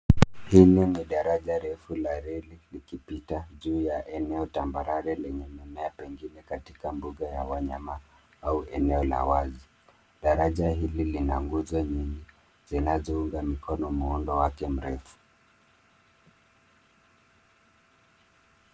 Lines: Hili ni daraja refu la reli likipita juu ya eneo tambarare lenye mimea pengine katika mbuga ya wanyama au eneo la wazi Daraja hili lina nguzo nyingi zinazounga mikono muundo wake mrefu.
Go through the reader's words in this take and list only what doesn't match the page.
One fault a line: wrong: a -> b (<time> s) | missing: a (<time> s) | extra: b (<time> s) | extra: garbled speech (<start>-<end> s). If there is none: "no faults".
no faults